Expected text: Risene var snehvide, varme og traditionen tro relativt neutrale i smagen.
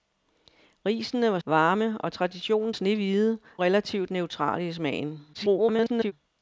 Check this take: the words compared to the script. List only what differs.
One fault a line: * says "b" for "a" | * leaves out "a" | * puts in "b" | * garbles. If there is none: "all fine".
* leaves out "snehvide"
* says "snehvide" for "tro"
* garbles